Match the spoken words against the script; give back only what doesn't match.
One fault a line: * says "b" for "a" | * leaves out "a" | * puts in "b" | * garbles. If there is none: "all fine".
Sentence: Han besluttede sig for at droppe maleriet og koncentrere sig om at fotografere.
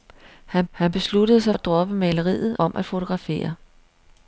* puts in "han"
* leaves out "for"
* leaves out "og koncentrere sig"